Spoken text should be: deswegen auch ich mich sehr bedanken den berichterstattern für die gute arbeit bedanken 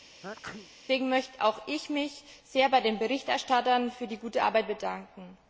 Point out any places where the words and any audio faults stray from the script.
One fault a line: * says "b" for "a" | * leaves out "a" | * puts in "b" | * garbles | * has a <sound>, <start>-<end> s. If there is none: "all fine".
* has a sneeze, 0.2-0.7 s
* puts in "möchte"
* says "bei" for "bedanken"